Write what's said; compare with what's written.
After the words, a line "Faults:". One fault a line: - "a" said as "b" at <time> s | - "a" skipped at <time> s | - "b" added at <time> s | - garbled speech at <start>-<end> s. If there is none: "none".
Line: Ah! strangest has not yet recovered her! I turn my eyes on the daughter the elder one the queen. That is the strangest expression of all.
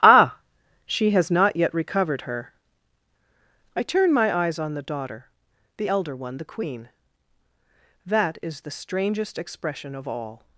Ah! she has not yet recovered her! I turn my eyes on the daughter the elder one the queen. That is the strangest expression of all.
Faults:
- "strangest" said as "she" at 0.8 s